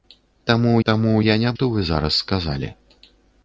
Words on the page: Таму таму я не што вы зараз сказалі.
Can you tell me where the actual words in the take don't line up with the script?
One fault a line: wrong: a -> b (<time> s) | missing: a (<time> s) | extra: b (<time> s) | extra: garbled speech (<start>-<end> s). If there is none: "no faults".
no faults